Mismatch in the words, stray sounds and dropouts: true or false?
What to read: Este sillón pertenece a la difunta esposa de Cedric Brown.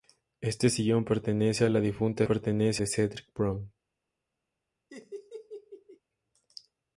true